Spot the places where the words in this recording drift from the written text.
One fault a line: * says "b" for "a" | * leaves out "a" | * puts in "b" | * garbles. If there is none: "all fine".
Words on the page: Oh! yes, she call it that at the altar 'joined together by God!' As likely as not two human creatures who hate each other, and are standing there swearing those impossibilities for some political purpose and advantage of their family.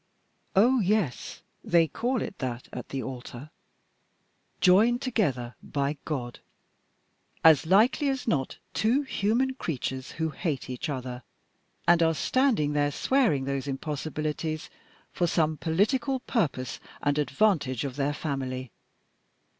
* says "they" for "she"